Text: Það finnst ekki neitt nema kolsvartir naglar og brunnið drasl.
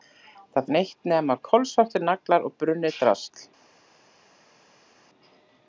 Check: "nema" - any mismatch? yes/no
no